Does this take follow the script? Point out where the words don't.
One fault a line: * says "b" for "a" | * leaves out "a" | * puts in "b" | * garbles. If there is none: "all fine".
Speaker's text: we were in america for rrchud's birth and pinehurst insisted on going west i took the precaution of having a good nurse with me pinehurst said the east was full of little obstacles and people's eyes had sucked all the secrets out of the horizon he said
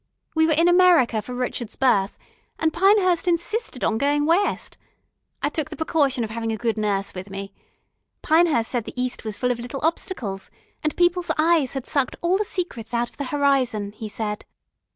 all fine